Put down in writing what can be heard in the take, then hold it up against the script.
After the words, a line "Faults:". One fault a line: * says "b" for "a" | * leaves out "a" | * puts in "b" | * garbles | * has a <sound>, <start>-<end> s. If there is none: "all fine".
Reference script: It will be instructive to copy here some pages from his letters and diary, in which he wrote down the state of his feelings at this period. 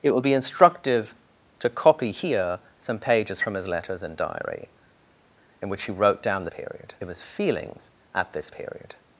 It will be instructive to copy here some pages from his letters and diary, in which he wrote down the period of his feelings at this period.
Faults:
* says "period" for "state"